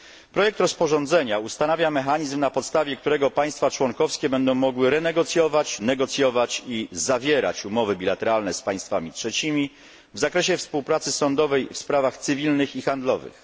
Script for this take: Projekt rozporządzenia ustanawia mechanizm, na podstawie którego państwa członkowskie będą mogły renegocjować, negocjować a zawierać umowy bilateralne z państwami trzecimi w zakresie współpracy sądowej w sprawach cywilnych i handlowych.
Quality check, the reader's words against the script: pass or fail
fail